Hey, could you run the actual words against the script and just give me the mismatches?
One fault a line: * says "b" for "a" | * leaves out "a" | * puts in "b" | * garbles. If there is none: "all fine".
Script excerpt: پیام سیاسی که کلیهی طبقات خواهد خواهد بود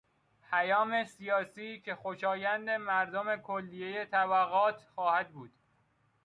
* puts in "خوشایند مردم"
* leaves out "خواهد"